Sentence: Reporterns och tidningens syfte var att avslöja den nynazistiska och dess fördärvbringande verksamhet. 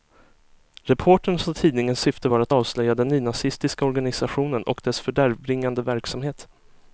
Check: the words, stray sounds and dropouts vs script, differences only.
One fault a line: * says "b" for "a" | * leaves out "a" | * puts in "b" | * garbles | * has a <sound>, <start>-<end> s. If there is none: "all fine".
* puts in "organisationen"